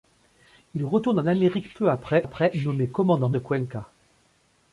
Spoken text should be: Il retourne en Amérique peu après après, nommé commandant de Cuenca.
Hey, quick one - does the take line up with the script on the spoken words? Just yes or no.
yes